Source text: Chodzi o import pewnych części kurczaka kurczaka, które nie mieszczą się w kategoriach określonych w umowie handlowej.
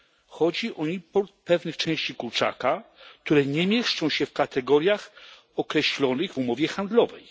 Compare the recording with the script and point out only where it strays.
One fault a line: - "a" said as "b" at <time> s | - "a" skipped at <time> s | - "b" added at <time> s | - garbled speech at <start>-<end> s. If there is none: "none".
- "kurczaka" skipped at 2.8 s